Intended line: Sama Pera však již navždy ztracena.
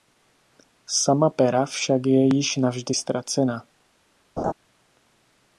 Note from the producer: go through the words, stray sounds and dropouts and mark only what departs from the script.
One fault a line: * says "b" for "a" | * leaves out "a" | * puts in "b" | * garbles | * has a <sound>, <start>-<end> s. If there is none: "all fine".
* puts in "je"
* has a laugh, 4.4-4.5 s